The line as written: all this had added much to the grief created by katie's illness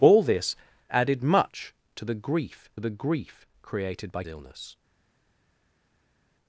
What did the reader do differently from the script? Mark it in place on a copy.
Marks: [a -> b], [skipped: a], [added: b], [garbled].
all this [skipped: had] added much to the grief [added: the grief] created by [skipped: katie's] illness